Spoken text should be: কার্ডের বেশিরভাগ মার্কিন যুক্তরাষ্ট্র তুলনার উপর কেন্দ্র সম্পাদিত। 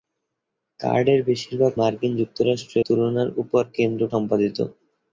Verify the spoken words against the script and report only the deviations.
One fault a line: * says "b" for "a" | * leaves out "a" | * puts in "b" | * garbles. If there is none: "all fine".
all fine